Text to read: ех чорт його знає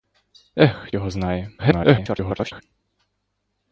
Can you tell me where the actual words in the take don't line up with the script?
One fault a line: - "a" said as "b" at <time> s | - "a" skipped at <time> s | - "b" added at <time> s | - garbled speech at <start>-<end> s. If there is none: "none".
- "чорт" skipped at 0.9 s
- garbled speech at 1.6-2.6 s